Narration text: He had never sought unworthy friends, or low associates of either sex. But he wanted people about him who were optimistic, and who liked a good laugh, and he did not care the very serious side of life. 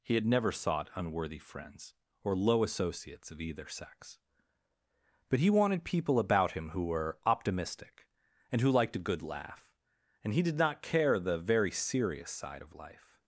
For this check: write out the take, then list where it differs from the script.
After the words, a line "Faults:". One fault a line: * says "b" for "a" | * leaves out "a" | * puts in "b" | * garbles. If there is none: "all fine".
He had never sought unworthy friends, or low associates of either sex. But he wanted people about him who were optimistic, and who liked a good laugh, and he did not care the very serious side of life.
Faults:
all fine